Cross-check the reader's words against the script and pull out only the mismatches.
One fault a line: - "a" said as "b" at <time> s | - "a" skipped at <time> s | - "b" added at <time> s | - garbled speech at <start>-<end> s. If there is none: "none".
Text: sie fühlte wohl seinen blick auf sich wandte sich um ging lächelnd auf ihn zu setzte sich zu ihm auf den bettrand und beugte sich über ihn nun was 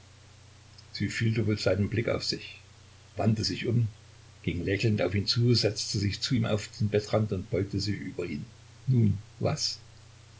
none